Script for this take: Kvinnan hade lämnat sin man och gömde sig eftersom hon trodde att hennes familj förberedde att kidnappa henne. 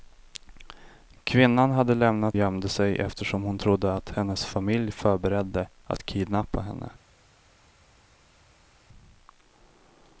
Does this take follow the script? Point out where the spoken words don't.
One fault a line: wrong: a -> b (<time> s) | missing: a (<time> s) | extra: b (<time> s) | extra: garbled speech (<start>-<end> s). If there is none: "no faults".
missing: sin man och (2.4 s)